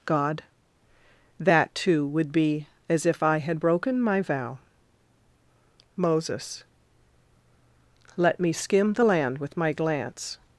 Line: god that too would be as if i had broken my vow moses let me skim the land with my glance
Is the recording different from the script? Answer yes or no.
no